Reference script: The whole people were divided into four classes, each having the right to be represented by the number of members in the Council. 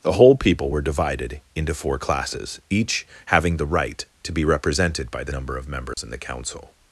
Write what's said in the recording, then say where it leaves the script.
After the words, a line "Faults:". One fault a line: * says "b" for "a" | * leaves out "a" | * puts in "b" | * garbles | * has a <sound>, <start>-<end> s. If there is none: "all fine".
The whole people were divided into four classes, each having the right to be represented by the number of members in the Council.
Faults:
* has a dropout, 5.9-6.0 s